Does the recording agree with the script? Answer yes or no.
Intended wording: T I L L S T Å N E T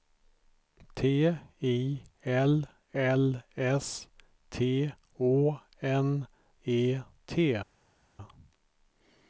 yes